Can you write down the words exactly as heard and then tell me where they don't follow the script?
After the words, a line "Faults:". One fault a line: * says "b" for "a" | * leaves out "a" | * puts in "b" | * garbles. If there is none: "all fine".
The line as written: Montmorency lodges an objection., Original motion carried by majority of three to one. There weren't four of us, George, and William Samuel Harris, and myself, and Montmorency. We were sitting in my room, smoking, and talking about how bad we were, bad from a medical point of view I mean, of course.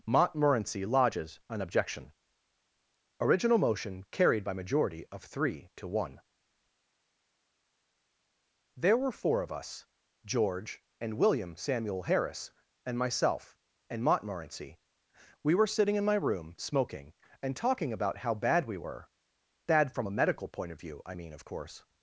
Montmorency lodges an objection., Original motion carried by majority of three to one. There were four of us, George, and William Samuel Harris, and myself, and Montmorency. We were sitting in my room, smoking, and talking about how bad we were, bad from a medical point of view I mean, of course.
Faults:
* says "were" for "weren't"